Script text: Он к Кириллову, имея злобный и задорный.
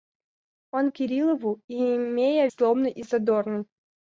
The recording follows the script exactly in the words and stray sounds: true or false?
true